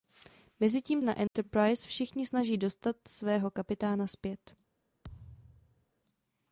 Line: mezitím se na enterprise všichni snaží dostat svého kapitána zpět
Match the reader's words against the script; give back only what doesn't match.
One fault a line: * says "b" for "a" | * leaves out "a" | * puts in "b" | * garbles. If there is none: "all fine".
* leaves out "se"